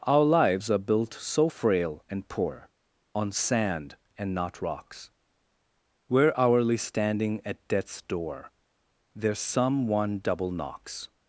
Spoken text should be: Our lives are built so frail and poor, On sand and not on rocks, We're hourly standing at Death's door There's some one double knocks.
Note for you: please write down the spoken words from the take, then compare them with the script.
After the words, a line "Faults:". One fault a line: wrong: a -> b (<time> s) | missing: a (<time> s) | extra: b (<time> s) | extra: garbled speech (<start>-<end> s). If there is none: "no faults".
Our lives are built so frail and poor, On sand and not rocks, We're hourly standing at Death's door There's some one double knocks.
Faults:
missing: on (4.6 s)